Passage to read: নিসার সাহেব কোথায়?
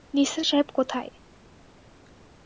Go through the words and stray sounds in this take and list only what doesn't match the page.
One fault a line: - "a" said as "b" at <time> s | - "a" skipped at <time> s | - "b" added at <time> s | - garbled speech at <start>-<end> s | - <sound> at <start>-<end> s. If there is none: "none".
none